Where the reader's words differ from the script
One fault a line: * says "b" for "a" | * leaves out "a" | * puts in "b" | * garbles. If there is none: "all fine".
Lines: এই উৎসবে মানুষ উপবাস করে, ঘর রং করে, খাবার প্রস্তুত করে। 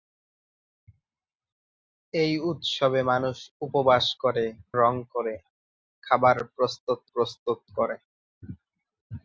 * leaves out "ঘর"
* puts in "প্রস্তুত"